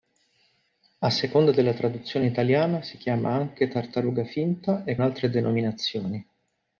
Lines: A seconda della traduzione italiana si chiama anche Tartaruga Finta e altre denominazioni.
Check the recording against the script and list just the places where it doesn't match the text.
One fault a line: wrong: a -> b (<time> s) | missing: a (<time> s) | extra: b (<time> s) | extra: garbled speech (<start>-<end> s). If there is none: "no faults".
no faults